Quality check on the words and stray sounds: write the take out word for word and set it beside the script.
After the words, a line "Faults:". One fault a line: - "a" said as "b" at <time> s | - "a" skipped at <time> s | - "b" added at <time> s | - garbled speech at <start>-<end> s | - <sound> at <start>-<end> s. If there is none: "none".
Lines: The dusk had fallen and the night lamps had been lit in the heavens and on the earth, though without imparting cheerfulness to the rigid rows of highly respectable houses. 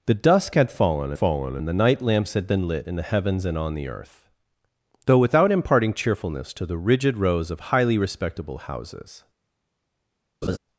The dusk had fallen fallen and the night lamps had been lit in the heavens and on the earth, though without imparting cheerfulness to the rigid rows of highly respectable houses.
Faults:
- "fallen" added at 1.1 s
- laugh at 10.4-10.6 s